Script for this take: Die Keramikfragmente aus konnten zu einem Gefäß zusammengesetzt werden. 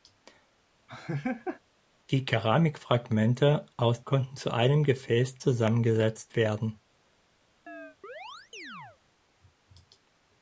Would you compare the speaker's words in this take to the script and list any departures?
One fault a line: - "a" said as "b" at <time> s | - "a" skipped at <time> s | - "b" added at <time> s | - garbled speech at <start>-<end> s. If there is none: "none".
none